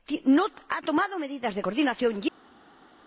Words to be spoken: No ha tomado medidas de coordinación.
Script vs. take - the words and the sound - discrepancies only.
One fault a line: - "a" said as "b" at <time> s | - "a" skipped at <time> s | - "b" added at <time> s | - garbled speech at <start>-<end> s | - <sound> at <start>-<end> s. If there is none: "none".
none